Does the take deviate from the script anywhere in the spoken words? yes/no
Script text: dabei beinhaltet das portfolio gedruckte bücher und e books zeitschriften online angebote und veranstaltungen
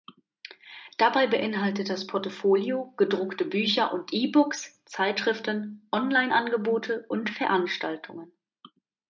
no